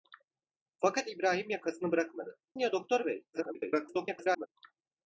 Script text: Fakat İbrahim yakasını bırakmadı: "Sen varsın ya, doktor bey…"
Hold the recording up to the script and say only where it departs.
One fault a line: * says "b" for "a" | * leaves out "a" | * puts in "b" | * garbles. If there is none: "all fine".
* leaves out "Sen varsın"
* garbles